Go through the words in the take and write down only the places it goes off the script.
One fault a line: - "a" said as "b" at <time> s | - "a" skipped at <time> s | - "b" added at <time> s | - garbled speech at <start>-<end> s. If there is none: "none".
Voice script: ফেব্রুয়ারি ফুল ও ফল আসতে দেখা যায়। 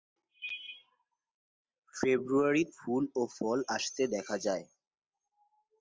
none